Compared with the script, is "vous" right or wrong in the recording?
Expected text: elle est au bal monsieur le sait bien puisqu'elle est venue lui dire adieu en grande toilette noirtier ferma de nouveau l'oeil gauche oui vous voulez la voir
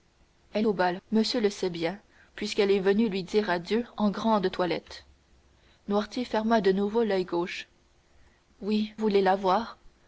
wrong